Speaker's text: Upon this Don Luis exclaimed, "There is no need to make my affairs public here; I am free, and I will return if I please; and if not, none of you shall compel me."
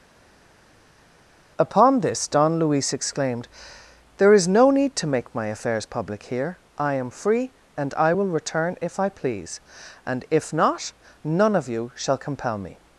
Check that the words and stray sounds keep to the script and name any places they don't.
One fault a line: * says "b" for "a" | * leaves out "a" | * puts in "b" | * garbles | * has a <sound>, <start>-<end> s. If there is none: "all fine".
all fine